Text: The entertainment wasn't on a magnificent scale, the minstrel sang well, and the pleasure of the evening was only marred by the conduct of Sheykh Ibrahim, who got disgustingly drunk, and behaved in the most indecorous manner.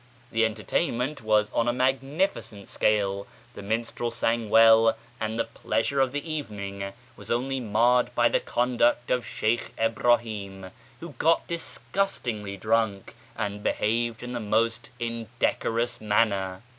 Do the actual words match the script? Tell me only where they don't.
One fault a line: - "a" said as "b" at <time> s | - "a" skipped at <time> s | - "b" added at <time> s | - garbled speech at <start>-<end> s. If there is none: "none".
- "wasn't" said as "was" at 1.2 s